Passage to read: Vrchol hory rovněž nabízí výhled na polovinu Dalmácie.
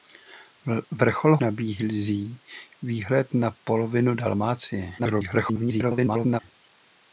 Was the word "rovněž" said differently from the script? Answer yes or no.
yes